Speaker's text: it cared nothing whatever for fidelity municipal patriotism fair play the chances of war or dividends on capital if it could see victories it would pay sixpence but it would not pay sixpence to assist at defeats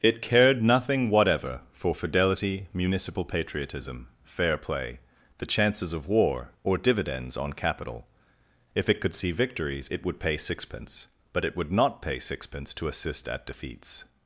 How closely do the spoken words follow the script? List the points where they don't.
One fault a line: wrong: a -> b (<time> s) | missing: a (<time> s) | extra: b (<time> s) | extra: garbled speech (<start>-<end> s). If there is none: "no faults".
no faults